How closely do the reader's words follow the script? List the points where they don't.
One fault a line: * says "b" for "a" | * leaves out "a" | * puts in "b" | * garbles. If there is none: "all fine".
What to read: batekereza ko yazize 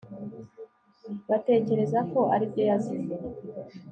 * puts in "aribyo"